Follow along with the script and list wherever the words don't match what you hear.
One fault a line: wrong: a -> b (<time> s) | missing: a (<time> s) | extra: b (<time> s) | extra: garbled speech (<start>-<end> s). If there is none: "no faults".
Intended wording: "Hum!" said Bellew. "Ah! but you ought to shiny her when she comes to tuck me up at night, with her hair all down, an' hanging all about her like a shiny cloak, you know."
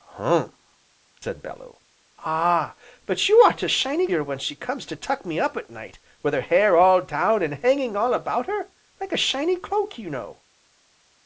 no faults